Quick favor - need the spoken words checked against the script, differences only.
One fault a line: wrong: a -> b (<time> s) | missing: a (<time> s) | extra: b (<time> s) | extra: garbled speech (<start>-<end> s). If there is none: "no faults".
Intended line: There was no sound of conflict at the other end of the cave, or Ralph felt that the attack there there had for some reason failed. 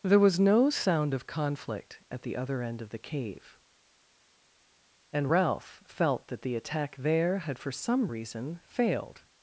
wrong: or -> and (5.1 s)
missing: there (7.4 s)